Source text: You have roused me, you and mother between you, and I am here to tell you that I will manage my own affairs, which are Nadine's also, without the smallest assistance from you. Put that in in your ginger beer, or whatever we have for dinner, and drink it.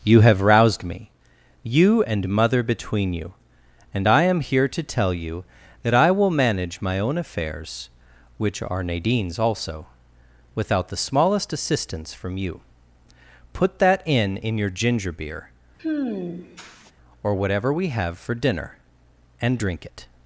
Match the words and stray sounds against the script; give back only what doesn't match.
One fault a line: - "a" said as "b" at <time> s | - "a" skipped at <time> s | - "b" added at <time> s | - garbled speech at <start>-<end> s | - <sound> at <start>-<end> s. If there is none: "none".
- sigh at 15.8-16.9 s